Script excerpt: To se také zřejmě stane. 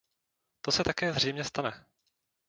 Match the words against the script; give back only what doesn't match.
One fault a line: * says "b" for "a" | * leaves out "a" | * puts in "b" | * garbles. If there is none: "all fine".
all fine